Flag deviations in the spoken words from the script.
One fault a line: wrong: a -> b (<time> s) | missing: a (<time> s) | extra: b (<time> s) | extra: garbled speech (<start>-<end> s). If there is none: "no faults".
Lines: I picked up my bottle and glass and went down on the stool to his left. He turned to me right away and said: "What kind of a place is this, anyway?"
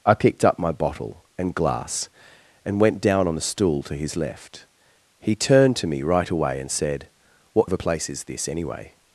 missing: kind (7.7 s)